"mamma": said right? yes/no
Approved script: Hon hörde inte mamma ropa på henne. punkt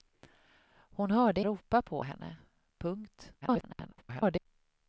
no